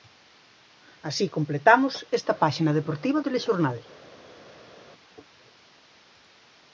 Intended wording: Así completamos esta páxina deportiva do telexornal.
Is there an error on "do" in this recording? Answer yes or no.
yes